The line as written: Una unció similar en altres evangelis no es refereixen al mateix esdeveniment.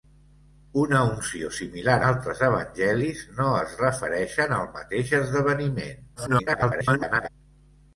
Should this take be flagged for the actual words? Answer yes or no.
yes